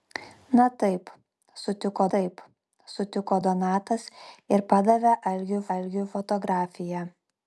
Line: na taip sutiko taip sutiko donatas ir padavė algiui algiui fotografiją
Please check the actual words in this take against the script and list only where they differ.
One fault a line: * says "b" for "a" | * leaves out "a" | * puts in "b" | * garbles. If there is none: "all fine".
all fine